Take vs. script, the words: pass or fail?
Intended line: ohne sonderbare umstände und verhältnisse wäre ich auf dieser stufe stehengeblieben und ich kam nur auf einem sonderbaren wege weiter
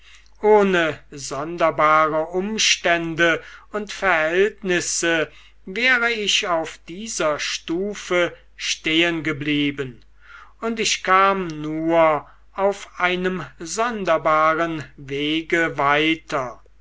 pass